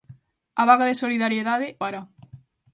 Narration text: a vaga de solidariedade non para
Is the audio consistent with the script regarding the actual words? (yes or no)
no